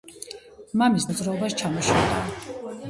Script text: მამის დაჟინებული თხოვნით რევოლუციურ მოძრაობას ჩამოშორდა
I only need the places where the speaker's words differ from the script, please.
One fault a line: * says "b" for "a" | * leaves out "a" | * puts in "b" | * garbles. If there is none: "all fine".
* leaves out "დაჟინებული თხოვნით რევოლუციურ"